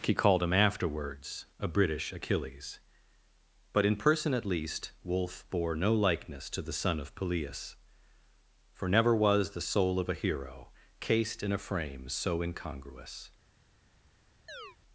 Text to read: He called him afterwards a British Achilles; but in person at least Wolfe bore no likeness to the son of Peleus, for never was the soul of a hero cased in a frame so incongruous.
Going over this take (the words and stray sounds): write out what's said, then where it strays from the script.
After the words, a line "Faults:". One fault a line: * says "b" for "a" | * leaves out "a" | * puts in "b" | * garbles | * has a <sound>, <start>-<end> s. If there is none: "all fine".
He called him afterwards a British Achilles; but in person at least Wolfe bore no likeness to the son of Peleus, for never was the soul of a hero cased in a frame so incongruous.
Faults:
* has a chirp, 14.5-14.8 s